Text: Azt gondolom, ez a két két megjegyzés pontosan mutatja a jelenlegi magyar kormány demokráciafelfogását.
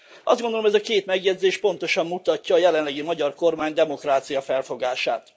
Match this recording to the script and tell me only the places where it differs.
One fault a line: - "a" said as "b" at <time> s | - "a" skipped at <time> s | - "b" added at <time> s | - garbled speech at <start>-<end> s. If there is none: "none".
- "két" skipped at 1.1 s